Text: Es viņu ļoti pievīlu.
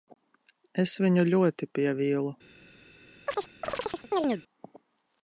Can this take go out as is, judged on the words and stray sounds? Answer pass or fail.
fail